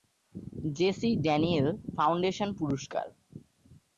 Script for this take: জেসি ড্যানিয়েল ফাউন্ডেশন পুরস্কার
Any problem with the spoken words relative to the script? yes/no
no